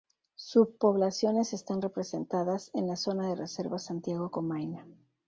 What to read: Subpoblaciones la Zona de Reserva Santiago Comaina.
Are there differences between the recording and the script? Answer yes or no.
yes